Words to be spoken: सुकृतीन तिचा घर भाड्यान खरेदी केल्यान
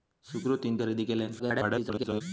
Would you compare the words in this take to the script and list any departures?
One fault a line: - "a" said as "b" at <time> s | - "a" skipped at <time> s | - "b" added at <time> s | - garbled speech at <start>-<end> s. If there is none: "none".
- "तिचा घर भाड्यान" skipped at 0.8 s
- garbled speech at 1.4-2.2 s